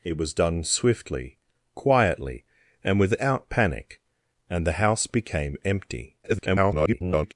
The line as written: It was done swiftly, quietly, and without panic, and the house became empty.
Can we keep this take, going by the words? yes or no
no